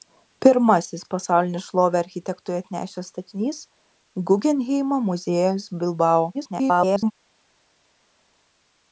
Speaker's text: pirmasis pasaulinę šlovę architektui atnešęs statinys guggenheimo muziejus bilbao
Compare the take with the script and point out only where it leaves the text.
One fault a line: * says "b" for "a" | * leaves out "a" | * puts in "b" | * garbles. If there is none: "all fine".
* garbles